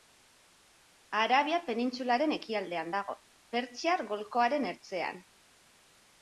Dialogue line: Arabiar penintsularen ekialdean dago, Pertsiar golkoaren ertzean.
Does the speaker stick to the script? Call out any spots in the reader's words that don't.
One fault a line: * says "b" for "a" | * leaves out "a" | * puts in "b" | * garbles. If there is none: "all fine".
all fine